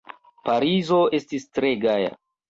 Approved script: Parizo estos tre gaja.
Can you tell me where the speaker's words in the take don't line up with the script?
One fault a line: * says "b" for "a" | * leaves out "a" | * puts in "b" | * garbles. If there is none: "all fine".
* says "estis" for "estos"